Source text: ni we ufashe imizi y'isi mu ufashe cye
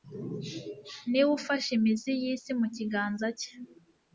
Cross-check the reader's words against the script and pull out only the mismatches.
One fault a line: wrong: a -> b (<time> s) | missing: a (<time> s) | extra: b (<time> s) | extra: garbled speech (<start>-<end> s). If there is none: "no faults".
wrong: ufashe -> kiganza (2.8 s)